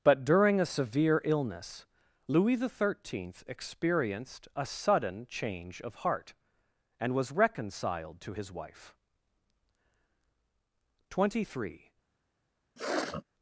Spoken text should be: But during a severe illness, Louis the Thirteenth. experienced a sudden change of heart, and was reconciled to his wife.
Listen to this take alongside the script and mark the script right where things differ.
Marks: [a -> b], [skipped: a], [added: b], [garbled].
But during a severe illness, Louis the Thirteenth. experienced a sudden change of heart, and was reconciled to his wife. [added: Twenty three]